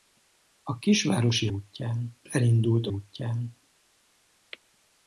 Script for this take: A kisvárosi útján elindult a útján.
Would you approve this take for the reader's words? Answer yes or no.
yes